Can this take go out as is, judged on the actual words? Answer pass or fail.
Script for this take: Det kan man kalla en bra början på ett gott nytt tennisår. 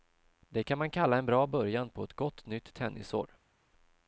pass